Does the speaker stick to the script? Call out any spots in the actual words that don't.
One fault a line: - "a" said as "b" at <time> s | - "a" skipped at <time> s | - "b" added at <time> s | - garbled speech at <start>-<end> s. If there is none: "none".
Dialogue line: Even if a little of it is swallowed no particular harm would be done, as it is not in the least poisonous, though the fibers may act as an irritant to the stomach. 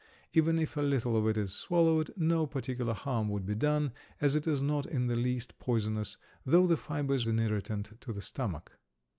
- "may act as" skipped at 7.3 s